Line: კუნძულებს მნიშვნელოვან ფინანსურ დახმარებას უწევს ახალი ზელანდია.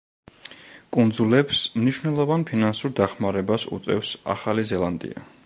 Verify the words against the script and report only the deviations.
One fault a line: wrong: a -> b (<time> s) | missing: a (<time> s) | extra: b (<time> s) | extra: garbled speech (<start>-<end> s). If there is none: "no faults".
no faults